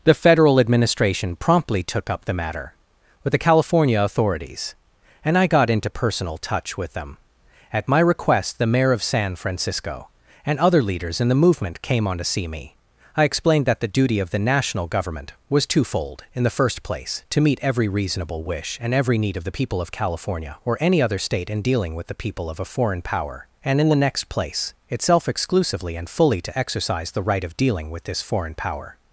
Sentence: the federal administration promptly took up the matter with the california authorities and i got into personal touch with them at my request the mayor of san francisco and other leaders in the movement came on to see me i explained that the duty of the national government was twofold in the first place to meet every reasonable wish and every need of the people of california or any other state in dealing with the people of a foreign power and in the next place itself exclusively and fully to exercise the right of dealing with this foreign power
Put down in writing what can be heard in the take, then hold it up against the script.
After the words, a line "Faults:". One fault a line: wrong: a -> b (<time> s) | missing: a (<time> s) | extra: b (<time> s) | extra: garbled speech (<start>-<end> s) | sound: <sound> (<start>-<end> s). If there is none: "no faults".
the federal administration promptly took up the matter with the california authorities and i got into personal touch with them at my request the mayor of san francisco and other leaders in the movement came on to see me i explained that the duty of the national government was twofold in the first place to meet every reasonable wish and every need of the people of california or any other state in dealing with the people of a foreign power and in the next place itself exclusively and fully to exercise the right of dealing with this foreign power
Faults:
no faults